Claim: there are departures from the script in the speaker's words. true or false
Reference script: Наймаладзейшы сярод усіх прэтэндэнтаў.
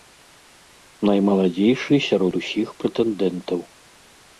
false